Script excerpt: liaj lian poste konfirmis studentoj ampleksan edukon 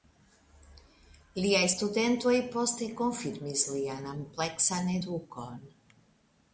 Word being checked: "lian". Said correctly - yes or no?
no